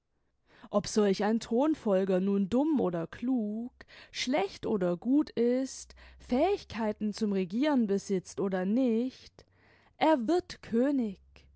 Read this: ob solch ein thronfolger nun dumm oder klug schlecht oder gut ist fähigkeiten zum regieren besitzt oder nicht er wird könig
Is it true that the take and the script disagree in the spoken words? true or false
false